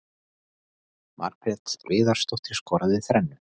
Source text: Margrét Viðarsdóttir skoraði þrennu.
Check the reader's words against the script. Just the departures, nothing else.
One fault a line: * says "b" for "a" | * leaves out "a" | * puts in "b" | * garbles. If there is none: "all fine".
all fine